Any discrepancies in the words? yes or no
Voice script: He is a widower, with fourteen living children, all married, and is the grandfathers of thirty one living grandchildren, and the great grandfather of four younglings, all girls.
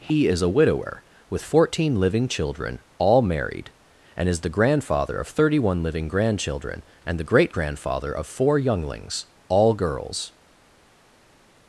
yes